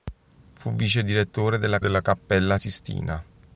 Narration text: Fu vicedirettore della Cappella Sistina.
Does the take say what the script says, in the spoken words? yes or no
no